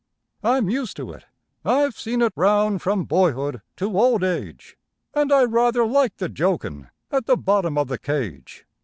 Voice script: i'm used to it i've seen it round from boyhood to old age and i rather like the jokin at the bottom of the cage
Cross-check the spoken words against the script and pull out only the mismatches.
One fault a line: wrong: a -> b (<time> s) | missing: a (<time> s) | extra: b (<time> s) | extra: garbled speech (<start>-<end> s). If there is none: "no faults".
no faults